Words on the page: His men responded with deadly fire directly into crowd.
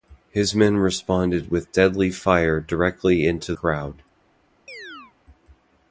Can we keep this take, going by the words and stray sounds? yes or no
no